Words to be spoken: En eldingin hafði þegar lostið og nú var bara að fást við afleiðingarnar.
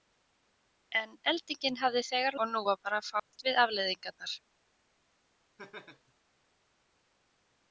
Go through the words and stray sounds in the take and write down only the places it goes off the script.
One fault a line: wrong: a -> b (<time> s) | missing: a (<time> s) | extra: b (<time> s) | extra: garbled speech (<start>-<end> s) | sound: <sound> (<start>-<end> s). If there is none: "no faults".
missing: lostið (2.4 s)
sound: dropout (3.2-3.3 s)
sound: laugh (5.6-6.1 s)